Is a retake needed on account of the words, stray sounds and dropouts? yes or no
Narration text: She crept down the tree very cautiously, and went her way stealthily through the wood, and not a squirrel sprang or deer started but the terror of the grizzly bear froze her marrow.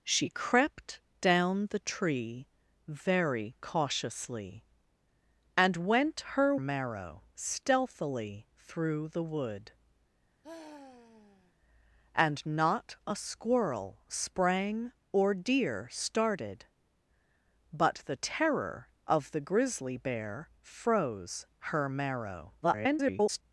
yes